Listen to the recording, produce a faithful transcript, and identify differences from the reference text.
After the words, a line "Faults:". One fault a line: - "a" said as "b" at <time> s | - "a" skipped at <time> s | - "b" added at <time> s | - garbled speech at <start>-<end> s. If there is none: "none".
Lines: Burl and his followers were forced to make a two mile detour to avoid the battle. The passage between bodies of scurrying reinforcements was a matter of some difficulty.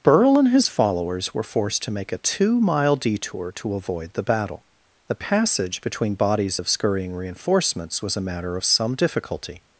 Burl and his followers were forced to make a two mile detour to avoid the battle. The passage between bodies of scurrying reinforcements was a matter of some difficulty.
Faults:
none